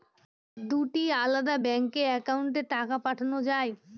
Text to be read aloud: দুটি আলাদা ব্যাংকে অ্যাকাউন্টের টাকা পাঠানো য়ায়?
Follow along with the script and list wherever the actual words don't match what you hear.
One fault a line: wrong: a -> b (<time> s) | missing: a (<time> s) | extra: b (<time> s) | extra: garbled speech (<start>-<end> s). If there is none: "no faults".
no faults